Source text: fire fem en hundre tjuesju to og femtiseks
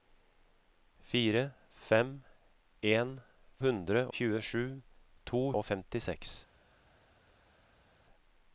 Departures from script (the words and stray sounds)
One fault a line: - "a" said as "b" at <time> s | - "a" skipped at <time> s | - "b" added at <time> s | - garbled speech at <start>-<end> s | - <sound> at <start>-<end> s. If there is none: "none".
none